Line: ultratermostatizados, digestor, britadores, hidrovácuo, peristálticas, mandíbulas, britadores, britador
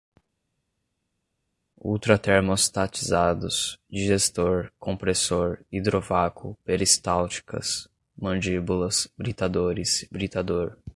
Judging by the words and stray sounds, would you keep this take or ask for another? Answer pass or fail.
fail